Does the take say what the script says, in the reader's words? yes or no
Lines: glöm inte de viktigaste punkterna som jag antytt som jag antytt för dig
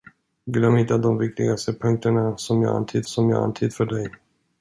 yes